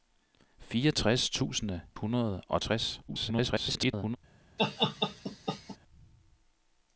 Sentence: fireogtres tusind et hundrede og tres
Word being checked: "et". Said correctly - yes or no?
no